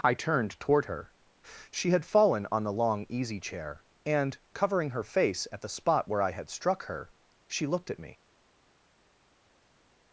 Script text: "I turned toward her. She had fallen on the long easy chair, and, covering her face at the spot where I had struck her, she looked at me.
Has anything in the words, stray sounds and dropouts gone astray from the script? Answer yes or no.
no